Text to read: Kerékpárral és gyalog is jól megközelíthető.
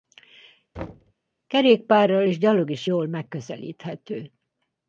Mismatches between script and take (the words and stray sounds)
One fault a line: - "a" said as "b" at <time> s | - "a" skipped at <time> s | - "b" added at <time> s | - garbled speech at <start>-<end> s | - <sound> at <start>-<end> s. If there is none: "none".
- thud at 0.7-1.1 s